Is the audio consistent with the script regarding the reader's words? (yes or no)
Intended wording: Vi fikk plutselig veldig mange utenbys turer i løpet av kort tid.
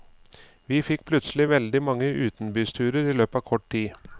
yes